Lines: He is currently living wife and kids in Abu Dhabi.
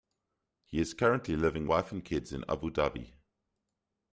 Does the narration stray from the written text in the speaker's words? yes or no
no